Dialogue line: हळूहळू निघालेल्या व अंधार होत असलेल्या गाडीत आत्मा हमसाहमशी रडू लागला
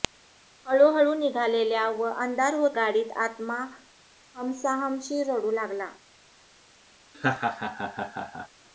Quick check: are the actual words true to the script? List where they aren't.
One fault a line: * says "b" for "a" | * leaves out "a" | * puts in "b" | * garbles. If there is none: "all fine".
* leaves out "असलेल्या"